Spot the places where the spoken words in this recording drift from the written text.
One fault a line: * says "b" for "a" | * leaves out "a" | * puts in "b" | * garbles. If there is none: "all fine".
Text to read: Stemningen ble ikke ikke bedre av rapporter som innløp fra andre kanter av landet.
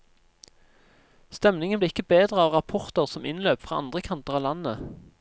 * leaves out "ikke"